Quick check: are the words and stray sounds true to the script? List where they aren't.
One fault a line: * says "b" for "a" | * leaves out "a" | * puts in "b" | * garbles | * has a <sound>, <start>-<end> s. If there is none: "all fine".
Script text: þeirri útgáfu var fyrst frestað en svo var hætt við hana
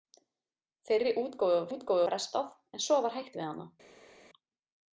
* says "útgáfu" for "fyrst"